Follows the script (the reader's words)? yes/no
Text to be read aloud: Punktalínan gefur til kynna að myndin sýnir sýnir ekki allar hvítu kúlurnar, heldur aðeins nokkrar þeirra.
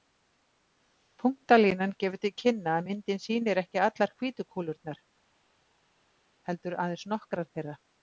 no